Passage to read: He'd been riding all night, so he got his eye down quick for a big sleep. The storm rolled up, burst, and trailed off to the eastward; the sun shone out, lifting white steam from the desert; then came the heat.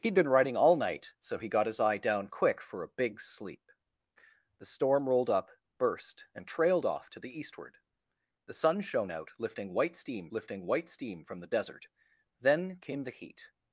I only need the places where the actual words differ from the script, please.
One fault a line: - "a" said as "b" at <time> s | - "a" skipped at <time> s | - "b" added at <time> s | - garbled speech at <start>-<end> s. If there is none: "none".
- "lifting white steam" added at 10.3 s